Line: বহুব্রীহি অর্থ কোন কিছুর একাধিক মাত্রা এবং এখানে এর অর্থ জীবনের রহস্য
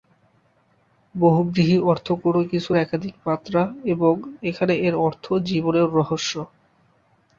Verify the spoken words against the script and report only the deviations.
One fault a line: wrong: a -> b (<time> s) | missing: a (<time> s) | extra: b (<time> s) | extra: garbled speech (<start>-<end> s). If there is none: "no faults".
no faults